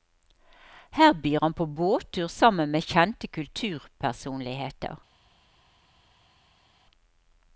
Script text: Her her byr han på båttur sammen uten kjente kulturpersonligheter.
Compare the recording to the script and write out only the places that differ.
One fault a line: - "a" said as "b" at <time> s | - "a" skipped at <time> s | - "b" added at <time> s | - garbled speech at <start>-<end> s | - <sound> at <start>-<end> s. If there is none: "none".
- "her" skipped at 1.1 s
- "uten" said as "med" at 2.7 s